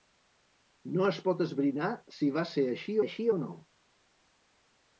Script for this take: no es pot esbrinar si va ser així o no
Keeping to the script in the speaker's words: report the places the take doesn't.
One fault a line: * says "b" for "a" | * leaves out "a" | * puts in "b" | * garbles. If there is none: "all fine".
* puts in "així"